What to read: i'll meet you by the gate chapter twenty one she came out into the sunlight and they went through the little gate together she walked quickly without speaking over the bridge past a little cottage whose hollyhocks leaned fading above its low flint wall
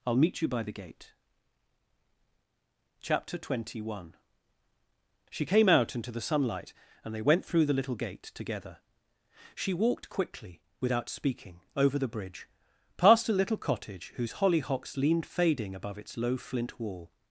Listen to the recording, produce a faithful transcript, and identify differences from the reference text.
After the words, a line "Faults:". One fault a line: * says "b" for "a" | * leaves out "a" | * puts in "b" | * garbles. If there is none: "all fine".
i'll meet you by the gate chapter twenty one she came out into the sunlight and they went through the little gate together she walked quickly without speaking over the bridge past a little cottage whose hollyhocks leaned fading above its low flint wall
Faults:
all fine